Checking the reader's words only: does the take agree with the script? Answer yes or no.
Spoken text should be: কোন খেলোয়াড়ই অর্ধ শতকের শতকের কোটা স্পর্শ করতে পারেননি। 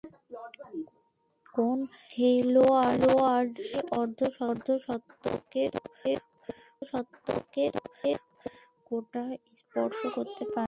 yes